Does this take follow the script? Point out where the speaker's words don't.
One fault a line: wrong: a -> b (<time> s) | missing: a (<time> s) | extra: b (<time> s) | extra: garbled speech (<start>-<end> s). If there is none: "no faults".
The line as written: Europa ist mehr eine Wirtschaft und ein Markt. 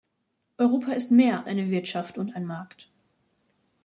no faults